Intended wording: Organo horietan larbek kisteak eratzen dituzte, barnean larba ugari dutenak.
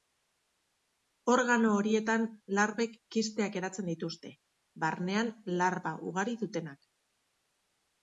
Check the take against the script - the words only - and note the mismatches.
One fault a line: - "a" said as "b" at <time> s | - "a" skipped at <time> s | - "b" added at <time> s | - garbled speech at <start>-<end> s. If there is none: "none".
none